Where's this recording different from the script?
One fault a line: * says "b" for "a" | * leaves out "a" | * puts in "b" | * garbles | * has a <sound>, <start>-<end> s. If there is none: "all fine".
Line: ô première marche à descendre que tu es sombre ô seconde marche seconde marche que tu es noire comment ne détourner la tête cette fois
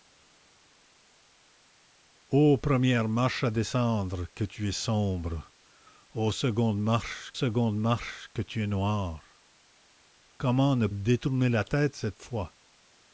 all fine